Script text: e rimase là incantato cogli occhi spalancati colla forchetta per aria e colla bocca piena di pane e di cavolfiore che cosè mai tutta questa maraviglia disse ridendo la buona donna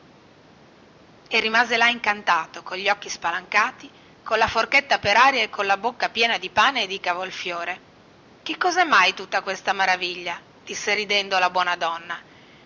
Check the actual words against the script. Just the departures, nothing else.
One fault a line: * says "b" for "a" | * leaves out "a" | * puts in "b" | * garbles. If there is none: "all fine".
all fine